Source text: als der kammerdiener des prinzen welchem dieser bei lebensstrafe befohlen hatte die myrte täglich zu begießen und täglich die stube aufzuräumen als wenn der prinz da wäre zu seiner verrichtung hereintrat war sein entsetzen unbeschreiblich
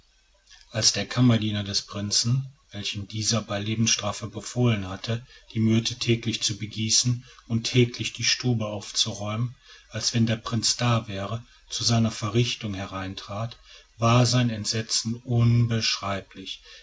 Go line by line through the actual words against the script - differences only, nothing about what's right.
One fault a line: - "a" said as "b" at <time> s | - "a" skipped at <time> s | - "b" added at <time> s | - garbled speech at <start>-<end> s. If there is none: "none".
none